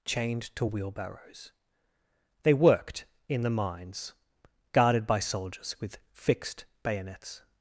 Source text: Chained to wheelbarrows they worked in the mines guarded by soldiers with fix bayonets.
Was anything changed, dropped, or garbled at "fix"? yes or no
yes